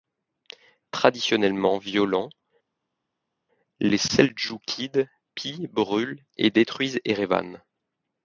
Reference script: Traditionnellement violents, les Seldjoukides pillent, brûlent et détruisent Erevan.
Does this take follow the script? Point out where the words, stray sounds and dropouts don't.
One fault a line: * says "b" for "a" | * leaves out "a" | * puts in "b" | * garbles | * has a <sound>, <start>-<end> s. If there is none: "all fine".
all fine